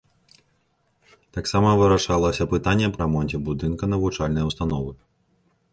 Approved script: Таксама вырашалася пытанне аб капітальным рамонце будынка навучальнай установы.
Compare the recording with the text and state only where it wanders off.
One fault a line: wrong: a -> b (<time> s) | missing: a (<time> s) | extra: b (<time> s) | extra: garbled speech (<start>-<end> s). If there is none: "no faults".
missing: капітальным (3.0 s)